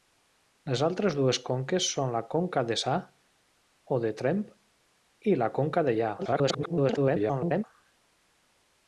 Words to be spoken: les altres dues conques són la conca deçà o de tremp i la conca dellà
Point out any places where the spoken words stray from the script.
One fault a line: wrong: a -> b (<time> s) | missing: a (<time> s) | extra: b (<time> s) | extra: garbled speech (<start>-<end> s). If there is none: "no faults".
extra: garbled speech (6.2-7.6 s)